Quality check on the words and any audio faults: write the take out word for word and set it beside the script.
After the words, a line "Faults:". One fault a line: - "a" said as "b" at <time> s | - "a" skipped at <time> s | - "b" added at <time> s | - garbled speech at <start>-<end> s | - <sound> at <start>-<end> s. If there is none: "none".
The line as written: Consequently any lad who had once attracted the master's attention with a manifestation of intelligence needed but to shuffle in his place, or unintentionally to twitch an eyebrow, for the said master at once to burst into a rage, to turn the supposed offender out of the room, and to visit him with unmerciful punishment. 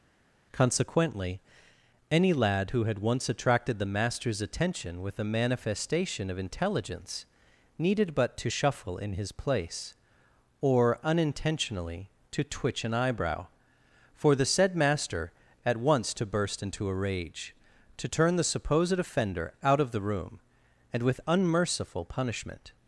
Consequently any lad who had once attracted the master's attention with a manifestation of intelligence needed but to shuffle in his place, or unintentionally to twitch an eyebrow, for the said master at once to burst into a rage, to turn the supposed offender out of the room, and with unmerciful punishment.
Faults:
- "to visit him" skipped at 21.0 s